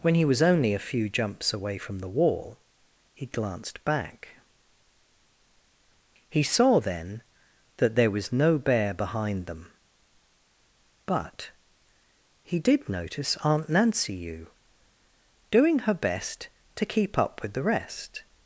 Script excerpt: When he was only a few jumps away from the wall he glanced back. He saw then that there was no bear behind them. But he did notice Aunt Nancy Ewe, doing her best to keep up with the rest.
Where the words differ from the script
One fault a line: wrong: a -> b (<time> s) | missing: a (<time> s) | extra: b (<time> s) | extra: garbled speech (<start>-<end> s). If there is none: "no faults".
no faults